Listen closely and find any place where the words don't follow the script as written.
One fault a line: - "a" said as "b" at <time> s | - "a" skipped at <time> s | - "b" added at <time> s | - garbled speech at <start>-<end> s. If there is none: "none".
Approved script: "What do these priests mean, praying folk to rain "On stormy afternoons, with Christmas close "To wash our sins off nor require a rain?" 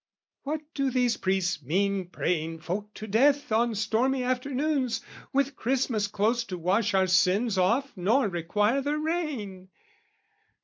- "rain" said as "death" at 3.1 s
- "a" said as "the" at 8.8 s